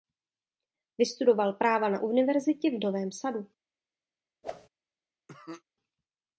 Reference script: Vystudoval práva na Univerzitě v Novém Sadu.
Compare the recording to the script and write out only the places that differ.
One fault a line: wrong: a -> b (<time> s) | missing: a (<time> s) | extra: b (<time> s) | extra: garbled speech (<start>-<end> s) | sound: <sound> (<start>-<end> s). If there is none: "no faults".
sound: whoosh (4.4-4.7 s)
sound: cough (5.3-5.6 s)